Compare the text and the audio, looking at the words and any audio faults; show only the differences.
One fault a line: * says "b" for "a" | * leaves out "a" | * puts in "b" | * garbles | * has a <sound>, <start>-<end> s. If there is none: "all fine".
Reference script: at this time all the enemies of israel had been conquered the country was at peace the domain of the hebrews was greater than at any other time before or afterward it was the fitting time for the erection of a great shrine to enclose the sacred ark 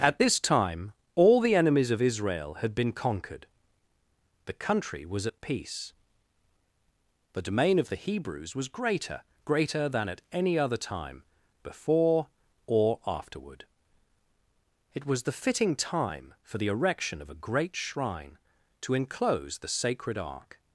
* puts in "greater"